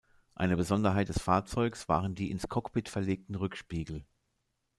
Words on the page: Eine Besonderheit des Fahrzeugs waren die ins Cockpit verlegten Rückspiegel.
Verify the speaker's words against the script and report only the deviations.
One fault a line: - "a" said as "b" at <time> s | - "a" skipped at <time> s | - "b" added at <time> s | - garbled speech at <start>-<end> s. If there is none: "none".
none